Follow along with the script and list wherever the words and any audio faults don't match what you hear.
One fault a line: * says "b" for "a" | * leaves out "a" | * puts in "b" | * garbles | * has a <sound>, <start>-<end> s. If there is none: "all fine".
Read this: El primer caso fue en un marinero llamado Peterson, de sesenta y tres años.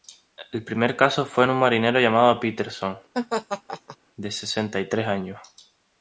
* has a laugh, 3.1-4.0 s